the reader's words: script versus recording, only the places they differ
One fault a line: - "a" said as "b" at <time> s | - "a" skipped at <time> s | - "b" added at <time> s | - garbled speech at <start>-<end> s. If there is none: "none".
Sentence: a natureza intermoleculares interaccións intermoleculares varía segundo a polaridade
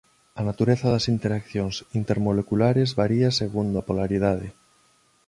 - "intermoleculares" said as "das" at 0.9 s